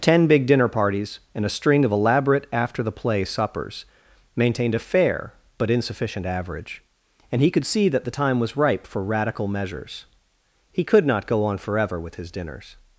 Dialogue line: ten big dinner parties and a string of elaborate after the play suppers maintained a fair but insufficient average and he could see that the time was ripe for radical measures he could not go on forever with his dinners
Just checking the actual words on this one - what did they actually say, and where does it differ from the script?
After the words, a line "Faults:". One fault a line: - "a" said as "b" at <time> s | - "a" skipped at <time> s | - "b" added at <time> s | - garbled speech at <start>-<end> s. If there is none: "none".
ten big dinner parties and a string of elaborate after the play suppers maintained a fair but insufficient average and he could see that the time was ripe for radical measures he could not go on forever with his dinners
Faults:
none